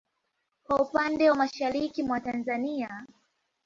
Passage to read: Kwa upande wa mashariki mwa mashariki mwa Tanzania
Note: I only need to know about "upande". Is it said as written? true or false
true